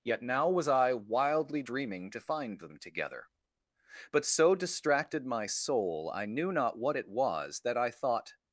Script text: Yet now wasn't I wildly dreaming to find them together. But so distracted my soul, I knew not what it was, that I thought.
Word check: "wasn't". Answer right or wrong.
wrong